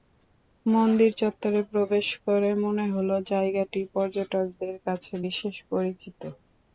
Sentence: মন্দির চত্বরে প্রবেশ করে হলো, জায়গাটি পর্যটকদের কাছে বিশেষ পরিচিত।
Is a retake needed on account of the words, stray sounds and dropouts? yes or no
yes